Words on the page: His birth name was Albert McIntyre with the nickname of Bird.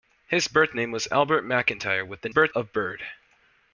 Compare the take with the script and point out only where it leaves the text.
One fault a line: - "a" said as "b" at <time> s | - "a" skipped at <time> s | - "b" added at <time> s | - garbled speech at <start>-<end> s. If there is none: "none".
- "nickname" said as "birth" at 2.3 s